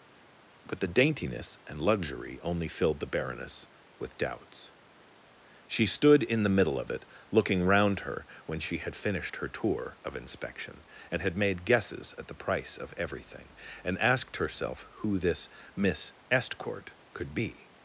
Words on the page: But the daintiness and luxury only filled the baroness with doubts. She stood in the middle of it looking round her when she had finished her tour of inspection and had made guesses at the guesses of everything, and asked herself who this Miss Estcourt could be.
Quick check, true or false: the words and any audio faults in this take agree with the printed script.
false